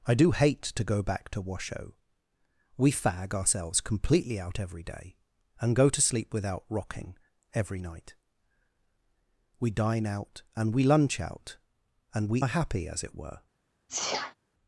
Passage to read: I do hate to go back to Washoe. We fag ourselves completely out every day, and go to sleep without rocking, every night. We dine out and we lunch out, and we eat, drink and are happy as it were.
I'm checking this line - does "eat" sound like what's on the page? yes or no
no